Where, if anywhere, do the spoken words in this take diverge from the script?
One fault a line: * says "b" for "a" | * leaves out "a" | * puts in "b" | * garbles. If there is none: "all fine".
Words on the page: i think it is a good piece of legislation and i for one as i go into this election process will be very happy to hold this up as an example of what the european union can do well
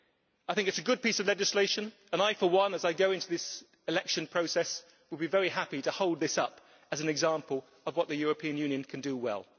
all fine